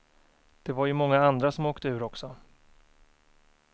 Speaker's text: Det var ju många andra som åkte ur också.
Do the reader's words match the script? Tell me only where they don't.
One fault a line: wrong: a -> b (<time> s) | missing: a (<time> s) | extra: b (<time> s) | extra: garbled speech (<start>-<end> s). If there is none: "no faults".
no faults